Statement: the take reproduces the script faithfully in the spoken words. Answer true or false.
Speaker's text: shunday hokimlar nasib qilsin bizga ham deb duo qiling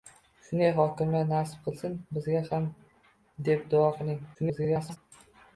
false